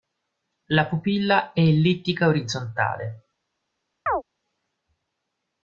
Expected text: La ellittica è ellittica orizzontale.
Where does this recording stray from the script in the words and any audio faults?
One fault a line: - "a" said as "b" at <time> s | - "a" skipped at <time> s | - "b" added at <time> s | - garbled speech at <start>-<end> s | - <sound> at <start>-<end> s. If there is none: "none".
- "ellittica" said as "pupilla" at 0.9 s
- chirp at 4.1-4.2 s